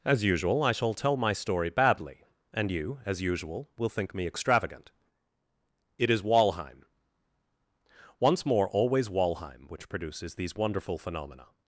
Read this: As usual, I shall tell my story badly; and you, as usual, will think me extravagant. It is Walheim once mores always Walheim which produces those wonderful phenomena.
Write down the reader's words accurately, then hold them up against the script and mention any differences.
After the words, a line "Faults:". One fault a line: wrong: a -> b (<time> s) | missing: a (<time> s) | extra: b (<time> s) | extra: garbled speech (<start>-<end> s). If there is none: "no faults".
As usual, I shall tell my story badly; and you, as usual, will think me extravagant. It is Walheim once more always Walheim which produces these wonderful phenomena.
Faults:
wrong: mores -> more (8.4 s)
wrong: those -> these (10.3 s)